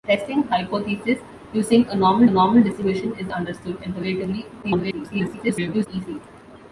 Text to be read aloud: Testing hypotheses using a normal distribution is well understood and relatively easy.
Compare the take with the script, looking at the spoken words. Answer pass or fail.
fail